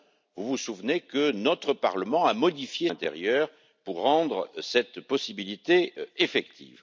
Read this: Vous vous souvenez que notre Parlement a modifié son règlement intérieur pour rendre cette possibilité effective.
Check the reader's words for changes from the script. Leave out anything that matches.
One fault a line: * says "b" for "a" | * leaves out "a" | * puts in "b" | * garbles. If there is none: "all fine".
* leaves out "son règlement"